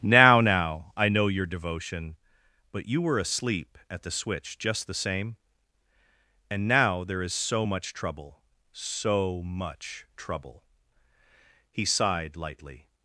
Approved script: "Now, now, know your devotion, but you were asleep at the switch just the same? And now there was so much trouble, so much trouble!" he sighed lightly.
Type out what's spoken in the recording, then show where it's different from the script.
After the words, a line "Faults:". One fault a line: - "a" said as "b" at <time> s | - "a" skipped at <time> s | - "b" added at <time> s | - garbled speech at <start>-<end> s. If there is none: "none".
"Now, now, I know your devotion, but you were asleep at the switch just the same? And now there is so much trouble, so much trouble!" he sighed lightly.
Faults:
- "I" added at 0.9 s
- "was" said as "is" at 7.2 s